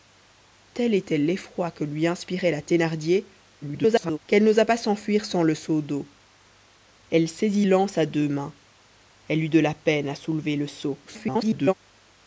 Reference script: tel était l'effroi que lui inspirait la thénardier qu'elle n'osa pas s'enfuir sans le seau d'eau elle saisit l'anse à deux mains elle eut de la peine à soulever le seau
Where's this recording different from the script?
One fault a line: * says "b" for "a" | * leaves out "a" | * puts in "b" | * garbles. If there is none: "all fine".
* garbles
* garbles